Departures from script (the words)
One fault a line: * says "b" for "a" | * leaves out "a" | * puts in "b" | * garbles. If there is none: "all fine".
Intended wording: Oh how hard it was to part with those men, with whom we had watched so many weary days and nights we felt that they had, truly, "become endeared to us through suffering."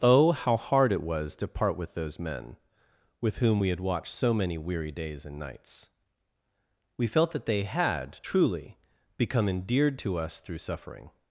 all fine